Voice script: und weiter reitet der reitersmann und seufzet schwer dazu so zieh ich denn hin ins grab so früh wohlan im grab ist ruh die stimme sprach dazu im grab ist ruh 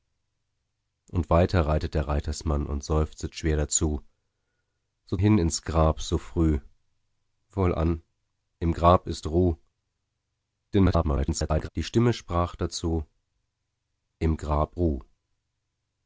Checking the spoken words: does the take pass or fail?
fail